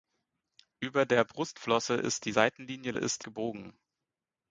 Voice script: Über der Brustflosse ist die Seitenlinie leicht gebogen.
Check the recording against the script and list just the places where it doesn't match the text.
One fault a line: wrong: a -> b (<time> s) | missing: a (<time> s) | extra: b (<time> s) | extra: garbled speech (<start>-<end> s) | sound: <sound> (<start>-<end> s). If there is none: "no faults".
wrong: leicht -> ist (2.9 s)